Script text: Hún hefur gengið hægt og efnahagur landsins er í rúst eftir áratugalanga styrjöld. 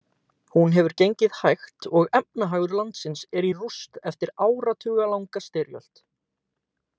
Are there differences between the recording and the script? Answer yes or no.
no